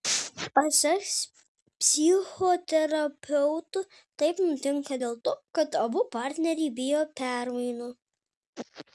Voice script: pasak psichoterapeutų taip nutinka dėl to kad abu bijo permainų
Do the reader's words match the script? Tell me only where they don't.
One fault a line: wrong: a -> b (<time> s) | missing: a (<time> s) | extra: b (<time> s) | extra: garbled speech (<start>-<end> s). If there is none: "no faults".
extra: partneriai (6.2 s)